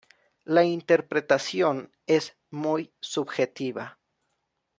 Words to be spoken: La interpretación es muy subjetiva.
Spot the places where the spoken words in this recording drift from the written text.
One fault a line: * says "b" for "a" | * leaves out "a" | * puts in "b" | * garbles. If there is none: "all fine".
all fine